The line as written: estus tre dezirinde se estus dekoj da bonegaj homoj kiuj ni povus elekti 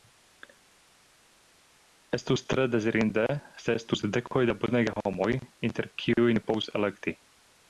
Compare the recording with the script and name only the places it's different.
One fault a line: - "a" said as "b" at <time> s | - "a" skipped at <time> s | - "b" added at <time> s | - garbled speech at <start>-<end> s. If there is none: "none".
- "inter" added at 5.7 s